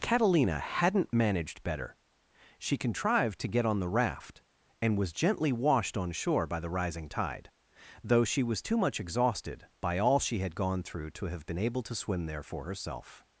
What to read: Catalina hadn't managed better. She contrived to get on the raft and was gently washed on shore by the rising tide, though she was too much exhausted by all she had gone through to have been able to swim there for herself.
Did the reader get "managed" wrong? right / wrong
right